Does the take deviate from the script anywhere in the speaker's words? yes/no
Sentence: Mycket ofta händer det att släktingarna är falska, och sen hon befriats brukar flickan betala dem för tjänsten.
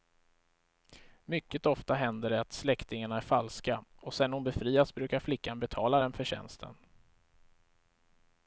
no